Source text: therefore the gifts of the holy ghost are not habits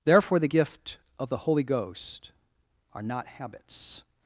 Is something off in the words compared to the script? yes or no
yes